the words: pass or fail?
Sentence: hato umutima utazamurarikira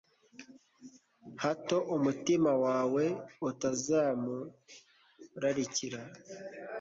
fail